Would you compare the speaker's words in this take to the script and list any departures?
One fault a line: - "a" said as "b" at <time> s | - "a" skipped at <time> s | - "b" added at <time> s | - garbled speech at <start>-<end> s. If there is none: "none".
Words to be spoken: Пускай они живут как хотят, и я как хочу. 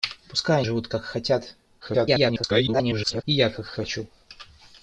- "они" skipped at 0.6 s
- garbled speech at 1.8-3.2 s